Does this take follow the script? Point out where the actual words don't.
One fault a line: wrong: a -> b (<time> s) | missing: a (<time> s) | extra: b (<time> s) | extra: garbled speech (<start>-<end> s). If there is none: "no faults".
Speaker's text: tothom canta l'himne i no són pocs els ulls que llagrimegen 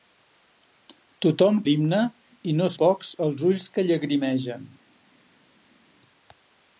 missing: canta (1.6 s)
missing: són (2.7 s)